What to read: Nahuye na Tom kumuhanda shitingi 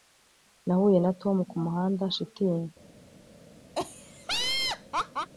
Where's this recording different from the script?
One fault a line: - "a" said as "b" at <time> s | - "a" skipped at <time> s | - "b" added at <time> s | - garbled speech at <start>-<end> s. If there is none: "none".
none